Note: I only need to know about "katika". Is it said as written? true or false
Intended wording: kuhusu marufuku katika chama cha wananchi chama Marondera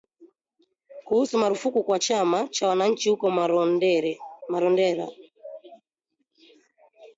false